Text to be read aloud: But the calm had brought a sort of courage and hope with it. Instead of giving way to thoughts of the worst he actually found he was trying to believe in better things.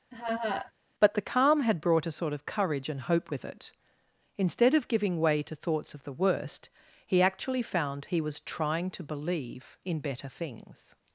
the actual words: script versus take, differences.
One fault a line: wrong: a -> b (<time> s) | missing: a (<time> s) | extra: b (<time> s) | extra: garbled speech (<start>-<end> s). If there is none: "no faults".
no faults